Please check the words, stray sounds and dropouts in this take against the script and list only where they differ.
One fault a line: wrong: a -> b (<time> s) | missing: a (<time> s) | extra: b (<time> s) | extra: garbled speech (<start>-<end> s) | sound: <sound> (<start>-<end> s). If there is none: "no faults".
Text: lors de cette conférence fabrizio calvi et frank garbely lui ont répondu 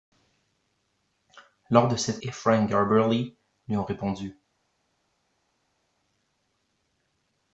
missing: conférence fabrizio calvi (2.2 s)